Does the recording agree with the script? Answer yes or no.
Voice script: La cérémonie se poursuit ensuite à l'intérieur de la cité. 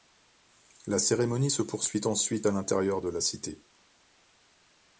yes